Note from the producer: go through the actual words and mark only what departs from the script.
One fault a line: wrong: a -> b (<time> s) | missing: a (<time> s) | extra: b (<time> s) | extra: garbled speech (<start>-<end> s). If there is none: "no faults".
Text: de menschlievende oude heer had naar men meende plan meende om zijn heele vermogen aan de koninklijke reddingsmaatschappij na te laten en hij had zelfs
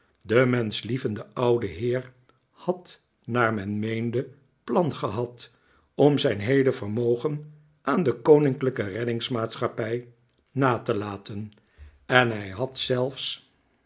wrong: meende -> gehad (5.0 s)